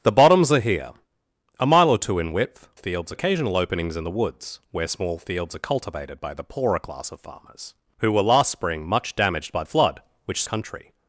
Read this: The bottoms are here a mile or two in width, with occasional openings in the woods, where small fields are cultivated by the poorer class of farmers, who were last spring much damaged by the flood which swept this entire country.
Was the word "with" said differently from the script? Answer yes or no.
yes